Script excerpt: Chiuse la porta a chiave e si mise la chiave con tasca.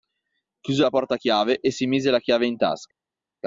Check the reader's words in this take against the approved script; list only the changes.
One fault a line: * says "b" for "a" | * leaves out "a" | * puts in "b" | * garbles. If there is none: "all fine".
* says "in" for "con"